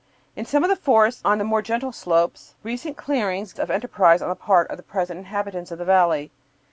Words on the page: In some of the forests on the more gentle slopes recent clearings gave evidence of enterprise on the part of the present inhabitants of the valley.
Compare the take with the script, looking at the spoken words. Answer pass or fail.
fail